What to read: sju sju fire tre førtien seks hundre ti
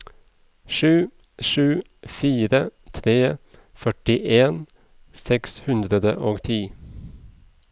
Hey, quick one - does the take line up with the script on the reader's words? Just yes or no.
no